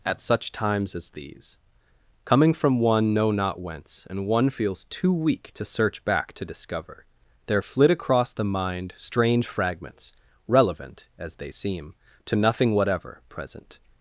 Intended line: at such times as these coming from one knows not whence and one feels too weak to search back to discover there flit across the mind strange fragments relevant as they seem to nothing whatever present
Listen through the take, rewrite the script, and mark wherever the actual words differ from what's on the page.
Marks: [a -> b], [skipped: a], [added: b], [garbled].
at such times as these coming from one [knows -> know] not whence and one feels too weak to search back to discover there flit across the mind strange fragments relevant as they seem to nothing whatever present